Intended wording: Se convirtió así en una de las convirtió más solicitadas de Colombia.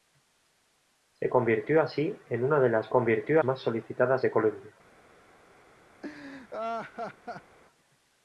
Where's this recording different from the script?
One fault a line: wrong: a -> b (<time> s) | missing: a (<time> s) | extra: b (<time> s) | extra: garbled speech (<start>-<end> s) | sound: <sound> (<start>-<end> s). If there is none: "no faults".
sound: laugh (6.0-7.6 s)